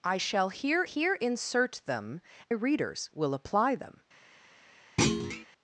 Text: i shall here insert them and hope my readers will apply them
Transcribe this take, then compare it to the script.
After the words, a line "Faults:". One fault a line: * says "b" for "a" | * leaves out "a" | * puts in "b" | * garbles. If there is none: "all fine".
i shall here here insert them readers will apply them
Faults:
* puts in "here"
* leaves out "and hope my"